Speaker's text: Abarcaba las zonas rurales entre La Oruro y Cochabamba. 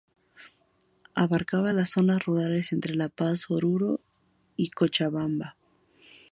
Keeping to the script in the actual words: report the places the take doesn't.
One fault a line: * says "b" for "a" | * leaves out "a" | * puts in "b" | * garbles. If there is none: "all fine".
* puts in "Paz"